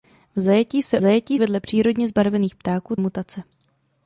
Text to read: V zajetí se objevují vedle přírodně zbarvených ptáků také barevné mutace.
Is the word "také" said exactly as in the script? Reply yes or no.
no